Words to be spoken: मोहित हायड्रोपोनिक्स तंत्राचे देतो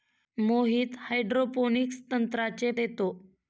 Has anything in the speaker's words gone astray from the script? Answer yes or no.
no